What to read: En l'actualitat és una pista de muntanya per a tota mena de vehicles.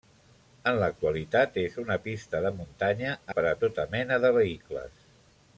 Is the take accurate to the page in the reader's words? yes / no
yes